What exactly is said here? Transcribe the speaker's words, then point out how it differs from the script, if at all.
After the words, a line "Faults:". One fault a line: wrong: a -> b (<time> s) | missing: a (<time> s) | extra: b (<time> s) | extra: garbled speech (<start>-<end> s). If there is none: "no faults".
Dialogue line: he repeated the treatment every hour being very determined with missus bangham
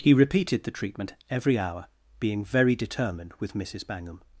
he repeated the treatment every hour being very determined with missus bangham
Faults:
no faults